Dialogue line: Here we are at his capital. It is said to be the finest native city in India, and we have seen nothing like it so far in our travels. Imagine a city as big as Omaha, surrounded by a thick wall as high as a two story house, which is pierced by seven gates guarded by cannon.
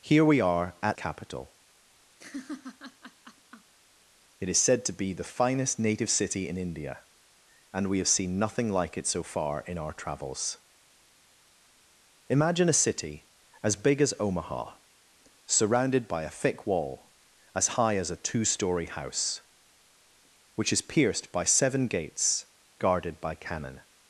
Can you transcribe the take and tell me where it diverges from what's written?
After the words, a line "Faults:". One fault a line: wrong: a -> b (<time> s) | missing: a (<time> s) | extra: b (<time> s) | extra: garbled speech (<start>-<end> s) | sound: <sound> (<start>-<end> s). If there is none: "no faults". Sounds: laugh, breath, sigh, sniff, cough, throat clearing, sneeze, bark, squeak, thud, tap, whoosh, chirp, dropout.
Here we are at capital. It is said to be the finest native city in India, and we have seen nothing like it so far in our travels. Imagine a city as big as Omaha, surrounded by a thick wall as high as a two story house, which is pierced by seven gates guarded by cannon.
Faults:
missing: his (1.0 s)
sound: laugh (2.2-3.7 s)